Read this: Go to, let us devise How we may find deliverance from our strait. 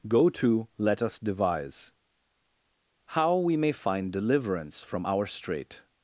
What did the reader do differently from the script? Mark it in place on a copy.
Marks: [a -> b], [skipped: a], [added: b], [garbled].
Go to, let us devise How we may find deliverance from our strait.